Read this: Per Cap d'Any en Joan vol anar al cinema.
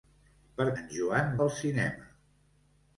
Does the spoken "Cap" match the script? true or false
false